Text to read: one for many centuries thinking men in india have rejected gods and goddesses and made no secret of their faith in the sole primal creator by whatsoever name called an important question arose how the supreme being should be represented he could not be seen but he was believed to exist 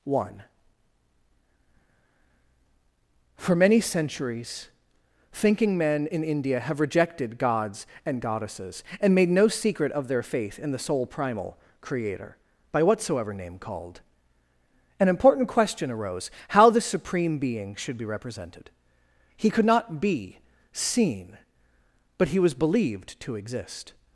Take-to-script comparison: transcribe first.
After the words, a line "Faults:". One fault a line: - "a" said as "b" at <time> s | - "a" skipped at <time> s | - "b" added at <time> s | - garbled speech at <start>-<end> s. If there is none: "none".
one for many centuries thinking men in india have rejected gods and goddesses and made no secret of their faith in the sole primal creator by whatsoever name called an important question arose how the supreme being should be represented he could not be seen but he was believed to exist
Faults:
none